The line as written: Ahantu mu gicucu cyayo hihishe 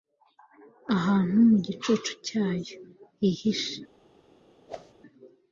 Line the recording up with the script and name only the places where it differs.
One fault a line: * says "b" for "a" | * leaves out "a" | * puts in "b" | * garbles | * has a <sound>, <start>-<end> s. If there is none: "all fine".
* has a whoosh, 4.7-4.9 s